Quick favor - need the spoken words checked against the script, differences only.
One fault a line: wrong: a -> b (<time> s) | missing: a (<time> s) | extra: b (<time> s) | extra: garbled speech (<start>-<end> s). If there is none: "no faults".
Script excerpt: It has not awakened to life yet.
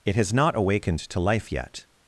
no faults